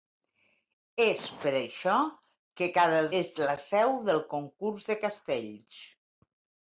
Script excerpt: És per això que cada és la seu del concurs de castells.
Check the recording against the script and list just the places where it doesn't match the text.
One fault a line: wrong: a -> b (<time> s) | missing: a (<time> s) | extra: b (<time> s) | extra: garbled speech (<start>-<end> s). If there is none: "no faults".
no faults